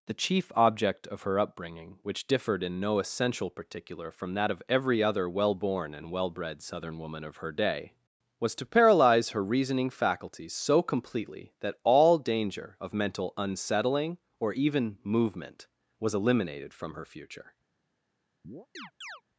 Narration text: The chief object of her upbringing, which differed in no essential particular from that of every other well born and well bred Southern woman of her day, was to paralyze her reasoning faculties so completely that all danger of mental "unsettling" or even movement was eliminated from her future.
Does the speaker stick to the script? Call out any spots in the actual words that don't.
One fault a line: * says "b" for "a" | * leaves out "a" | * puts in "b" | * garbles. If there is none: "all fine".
all fine